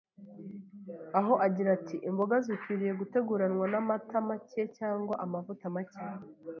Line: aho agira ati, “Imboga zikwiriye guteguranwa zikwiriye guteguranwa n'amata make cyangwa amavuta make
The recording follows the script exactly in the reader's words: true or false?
false